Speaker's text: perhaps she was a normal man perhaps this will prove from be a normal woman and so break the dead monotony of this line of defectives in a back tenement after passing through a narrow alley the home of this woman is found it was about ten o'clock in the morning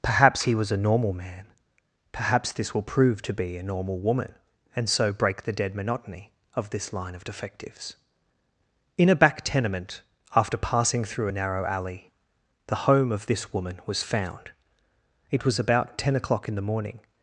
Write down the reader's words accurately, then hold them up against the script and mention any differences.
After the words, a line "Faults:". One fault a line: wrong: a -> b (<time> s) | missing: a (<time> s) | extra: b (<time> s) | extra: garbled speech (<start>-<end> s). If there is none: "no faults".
perhaps he was a normal man perhaps this will prove to be a normal woman and so break the dead monotony of this line of defectives in a back tenement after passing through a narrow alley the home of this woman was found it was about ten o'clock in the morning
Faults:
wrong: she -> he (0.4 s)
wrong: from -> to (3.2 s)
wrong: is -> was (13.9 s)